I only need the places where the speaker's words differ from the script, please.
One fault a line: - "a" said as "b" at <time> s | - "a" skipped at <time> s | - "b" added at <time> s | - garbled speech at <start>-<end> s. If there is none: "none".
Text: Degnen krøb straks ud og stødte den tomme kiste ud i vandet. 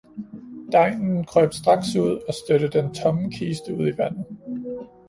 none